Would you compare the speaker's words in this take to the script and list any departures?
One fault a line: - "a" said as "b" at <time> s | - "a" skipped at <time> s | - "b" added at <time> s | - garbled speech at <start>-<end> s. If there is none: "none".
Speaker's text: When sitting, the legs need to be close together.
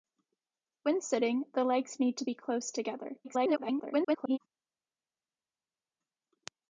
- garbled speech at 3.2-4.4 s